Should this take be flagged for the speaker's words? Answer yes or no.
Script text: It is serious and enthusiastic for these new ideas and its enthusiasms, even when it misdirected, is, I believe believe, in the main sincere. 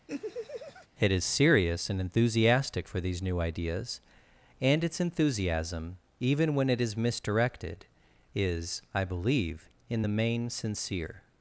yes